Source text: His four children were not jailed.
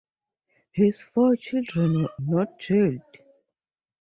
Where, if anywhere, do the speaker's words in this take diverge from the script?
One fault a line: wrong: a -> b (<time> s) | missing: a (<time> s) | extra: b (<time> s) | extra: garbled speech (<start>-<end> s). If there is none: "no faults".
no faults